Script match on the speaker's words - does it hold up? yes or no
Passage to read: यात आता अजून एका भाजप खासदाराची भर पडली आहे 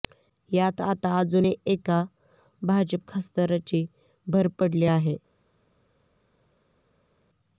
yes